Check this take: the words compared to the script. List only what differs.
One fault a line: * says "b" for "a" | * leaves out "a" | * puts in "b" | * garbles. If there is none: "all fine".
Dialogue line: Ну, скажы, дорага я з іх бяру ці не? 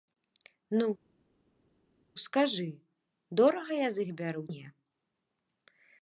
* leaves out "ці"